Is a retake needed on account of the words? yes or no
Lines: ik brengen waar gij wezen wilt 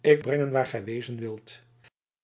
no